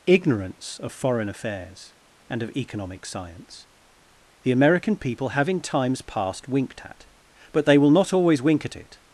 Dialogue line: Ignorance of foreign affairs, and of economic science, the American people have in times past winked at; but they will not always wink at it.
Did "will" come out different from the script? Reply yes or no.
no